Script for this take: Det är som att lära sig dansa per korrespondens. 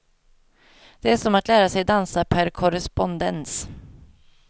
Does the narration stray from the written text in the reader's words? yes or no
no